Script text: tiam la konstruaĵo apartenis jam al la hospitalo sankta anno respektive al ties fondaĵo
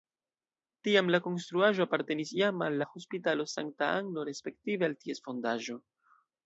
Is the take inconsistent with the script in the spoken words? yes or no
no